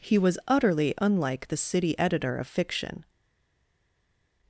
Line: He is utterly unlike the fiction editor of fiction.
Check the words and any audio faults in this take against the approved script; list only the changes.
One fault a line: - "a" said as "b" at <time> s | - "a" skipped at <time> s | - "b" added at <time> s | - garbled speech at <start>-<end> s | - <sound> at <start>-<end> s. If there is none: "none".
- "is" said as "was" at 0.2 s
- "fiction" said as "city" at 1.6 s